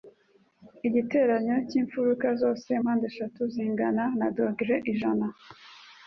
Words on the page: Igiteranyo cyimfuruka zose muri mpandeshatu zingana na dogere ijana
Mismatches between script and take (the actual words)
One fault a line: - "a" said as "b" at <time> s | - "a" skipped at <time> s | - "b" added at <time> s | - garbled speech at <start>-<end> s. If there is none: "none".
- "muri" skipped at 2.7 s